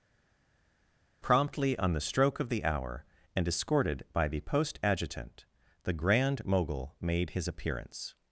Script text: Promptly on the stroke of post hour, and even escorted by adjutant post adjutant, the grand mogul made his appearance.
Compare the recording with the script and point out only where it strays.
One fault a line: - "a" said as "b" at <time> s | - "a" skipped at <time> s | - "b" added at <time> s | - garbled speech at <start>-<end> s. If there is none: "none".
- "post" said as "the" at 2.5 s
- "even" skipped at 3.5 s
- "adjutant" said as "the" at 4.3 s